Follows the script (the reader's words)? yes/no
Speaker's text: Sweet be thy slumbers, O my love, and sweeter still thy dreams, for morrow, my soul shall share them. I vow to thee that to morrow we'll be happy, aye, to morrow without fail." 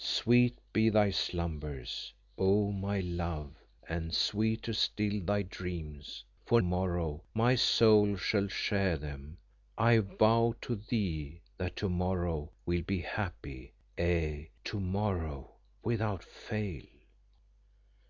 yes